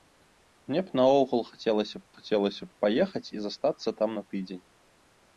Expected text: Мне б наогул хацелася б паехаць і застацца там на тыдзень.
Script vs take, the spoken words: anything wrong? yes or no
yes